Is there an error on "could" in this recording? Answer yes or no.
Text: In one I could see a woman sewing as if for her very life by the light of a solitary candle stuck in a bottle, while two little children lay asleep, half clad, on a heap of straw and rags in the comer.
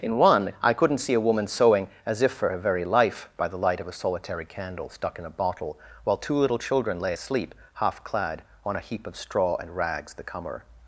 yes